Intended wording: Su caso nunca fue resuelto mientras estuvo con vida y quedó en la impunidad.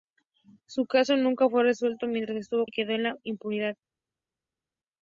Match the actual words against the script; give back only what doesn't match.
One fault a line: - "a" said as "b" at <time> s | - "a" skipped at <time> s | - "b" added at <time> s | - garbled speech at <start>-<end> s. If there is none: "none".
- "con vida" skipped at 2.6 s